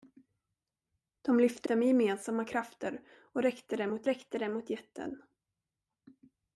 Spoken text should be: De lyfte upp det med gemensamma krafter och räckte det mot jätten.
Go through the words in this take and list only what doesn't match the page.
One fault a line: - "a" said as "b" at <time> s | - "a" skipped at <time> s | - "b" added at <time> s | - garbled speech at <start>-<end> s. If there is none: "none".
- "upp" skipped at 1.7 s
- "räckte det mot" added at 4.0 s